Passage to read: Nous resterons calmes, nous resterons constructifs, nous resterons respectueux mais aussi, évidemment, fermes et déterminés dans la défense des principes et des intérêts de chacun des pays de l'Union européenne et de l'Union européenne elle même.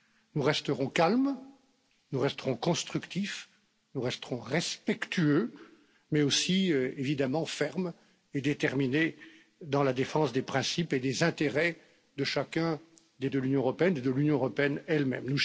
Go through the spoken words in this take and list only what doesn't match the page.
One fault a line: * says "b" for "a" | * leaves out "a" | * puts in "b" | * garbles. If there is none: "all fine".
* leaves out "pays"